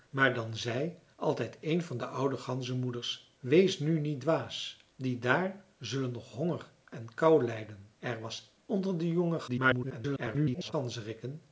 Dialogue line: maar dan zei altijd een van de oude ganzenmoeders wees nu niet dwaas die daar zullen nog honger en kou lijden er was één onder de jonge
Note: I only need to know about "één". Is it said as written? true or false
false